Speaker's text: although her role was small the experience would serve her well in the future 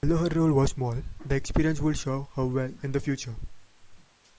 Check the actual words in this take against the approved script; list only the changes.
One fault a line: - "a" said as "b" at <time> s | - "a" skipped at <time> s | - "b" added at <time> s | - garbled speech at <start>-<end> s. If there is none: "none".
none